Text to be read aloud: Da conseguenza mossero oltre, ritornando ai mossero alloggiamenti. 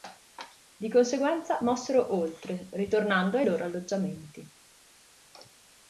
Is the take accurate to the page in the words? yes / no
no